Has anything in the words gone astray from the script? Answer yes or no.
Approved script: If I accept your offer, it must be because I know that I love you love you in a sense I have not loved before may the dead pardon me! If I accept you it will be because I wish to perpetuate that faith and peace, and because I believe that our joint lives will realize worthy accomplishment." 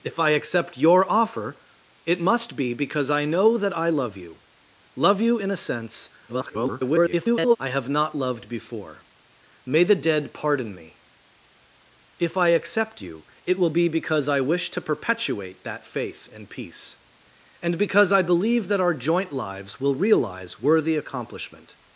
yes